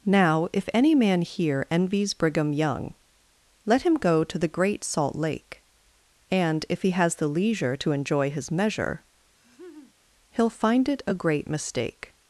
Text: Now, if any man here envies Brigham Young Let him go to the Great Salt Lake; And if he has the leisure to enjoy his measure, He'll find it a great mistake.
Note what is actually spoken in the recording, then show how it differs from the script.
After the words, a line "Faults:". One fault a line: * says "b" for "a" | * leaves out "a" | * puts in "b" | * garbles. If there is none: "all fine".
Now, if any man here envies Brigham Young Let him go to the Great Salt Lake; And if he has the leisure to enjoy his measure, He'll find it a great mistake.
Faults:
all fine